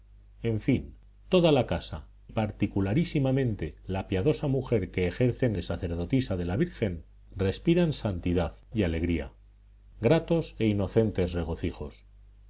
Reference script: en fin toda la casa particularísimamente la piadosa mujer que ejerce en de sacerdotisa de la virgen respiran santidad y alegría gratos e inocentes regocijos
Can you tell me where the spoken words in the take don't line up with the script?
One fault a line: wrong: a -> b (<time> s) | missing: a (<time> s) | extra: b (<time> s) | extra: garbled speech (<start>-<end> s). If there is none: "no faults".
no faults